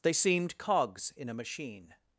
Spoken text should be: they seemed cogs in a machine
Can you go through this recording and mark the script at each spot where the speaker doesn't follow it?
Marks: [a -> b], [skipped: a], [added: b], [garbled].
they seemed cogs in a machine